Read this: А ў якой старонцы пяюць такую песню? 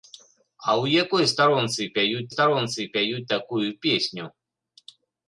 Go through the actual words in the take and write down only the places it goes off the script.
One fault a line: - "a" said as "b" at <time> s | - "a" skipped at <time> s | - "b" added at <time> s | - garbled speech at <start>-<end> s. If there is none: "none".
- "старонцы пяюць" added at 2.3 s